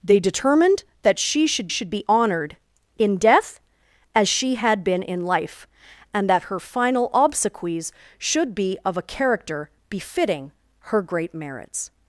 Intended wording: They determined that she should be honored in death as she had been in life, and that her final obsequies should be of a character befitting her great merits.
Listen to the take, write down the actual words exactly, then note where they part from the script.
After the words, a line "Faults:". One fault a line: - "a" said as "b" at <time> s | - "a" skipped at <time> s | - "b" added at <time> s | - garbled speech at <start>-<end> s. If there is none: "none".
They determined that she should should be honored in death as she had been in life, and that her final obsequies should be of a character befitting her great merits.
Faults:
- "should" added at 1.7 s